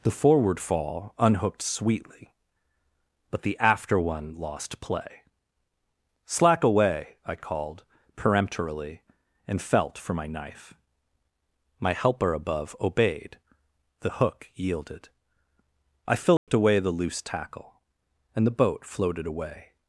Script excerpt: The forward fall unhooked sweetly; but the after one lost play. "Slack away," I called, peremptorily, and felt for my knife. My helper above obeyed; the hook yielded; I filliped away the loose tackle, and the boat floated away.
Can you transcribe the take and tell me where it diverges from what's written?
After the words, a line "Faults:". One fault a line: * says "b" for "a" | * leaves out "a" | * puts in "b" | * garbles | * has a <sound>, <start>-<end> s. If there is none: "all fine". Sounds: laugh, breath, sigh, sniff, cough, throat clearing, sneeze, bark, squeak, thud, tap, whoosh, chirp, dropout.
The forward fall unhooked sweetly; but the after one lost play. "Slack away," I called, peremptorily, and felt for my knife. My helper above obeyed; the hook yielded; I filliped away the loose tackle, and the boat floated away.
Faults:
* has a dropout, 16.4-16.5 s